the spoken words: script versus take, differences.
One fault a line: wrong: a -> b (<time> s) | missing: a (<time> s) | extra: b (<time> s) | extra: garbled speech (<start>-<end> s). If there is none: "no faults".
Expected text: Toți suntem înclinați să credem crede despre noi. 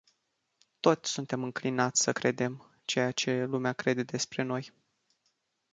extra: ceea ce lumea (2.8 s)